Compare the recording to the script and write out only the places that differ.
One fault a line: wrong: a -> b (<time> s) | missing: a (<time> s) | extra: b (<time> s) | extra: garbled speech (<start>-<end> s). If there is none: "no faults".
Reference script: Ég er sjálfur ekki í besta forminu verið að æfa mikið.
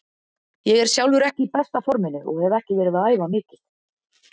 extra: og hef ekki (2.3 s)